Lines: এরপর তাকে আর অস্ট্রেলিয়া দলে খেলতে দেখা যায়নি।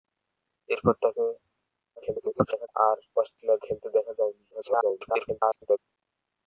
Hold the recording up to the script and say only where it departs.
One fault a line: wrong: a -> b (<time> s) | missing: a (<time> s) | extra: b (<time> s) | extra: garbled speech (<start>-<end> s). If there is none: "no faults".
extra: garbled speech (2.0-2.7 s)
missing: দলে (3.6 s)
extra: garbled speech (4.5-5.8 s)